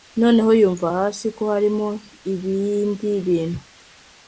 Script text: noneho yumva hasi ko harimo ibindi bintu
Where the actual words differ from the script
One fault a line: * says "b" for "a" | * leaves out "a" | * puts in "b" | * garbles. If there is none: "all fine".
all fine